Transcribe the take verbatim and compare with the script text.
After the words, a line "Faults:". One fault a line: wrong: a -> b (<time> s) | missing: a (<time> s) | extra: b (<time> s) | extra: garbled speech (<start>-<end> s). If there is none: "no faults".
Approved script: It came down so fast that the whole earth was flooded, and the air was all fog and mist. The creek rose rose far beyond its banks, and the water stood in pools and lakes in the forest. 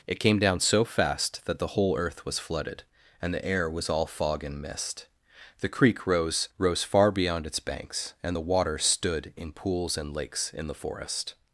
It came down so fast that the whole earth was flooded, and the air was all fog and mist. The creek rose rose far beyond its banks, and the water stood in pools and lakes in the forest.
Faults:
no faults